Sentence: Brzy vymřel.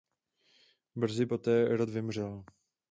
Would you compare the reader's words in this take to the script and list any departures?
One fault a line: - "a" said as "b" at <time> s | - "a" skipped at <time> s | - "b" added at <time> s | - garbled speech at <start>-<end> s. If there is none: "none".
- "poté rod" added at 1.2 s